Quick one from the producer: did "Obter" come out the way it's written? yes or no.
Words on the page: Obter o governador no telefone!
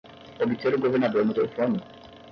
yes